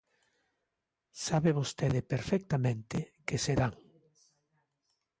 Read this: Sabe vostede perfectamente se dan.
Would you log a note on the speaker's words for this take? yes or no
yes